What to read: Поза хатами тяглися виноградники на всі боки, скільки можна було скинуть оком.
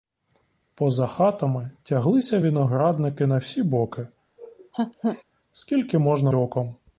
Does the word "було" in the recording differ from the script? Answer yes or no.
yes